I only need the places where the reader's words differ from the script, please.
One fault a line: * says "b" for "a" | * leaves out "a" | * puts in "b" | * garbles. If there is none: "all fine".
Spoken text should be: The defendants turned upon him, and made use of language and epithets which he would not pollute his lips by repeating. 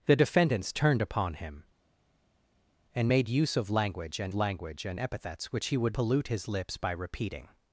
* puts in "language and"
* leaves out "not"